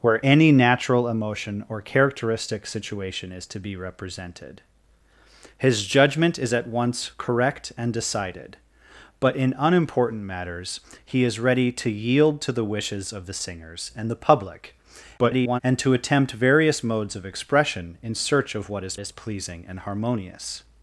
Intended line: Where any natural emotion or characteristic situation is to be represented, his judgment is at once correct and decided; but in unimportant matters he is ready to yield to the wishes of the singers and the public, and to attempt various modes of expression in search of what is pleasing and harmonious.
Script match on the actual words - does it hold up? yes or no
no